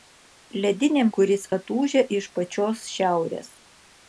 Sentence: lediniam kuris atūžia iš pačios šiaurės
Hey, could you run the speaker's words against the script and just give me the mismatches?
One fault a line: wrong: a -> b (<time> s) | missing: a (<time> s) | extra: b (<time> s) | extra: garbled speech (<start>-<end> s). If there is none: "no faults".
no faults